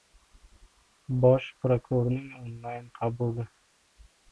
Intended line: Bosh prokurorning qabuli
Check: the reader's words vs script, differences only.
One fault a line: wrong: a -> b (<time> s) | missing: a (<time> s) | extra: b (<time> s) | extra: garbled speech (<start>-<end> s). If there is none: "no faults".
extra: onlayn (2.4 s)